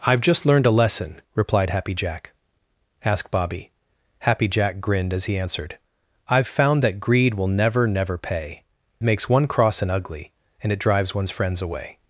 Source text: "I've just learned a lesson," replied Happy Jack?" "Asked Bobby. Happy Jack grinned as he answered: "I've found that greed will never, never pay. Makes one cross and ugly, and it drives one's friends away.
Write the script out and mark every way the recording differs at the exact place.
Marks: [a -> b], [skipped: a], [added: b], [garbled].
"I've just learned a lesson," replied Happy Jack?" "Asked Bobby. Happy Jack grinned as he answered: "I've found that greed will never, never pay. Makes one cross and ugly, and it drives one's friends away.